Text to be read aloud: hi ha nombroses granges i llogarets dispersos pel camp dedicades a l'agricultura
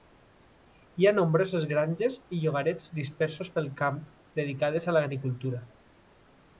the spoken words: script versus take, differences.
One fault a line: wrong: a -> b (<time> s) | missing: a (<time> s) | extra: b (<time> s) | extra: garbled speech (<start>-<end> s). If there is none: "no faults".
no faults